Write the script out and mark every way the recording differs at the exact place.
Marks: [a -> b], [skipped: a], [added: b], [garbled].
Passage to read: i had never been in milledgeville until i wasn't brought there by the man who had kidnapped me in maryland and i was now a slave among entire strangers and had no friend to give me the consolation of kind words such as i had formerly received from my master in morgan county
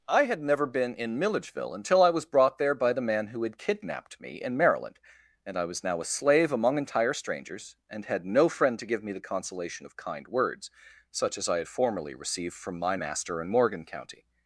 i had never been in milledgeville until i [wasn't -> was] brought there by the man who had kidnapped me in maryland and i was now a slave among entire strangers and had no friend to give me the consolation of kind words such as i had formerly received from my master in morgan county